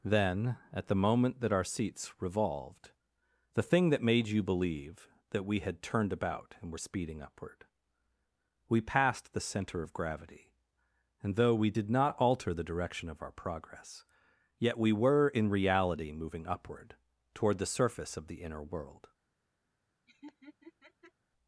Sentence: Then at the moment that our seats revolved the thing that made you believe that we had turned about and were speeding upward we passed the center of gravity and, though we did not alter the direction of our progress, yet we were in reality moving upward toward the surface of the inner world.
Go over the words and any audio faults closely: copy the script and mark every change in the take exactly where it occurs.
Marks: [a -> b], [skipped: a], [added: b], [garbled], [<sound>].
Then at the moment that our seats revolved the thing that made you believe that we had turned about and were speeding upward we passed the center of gravity and, though we did not alter the direction of our progress, yet we were in reality moving upward toward the surface of the inner world. [laugh]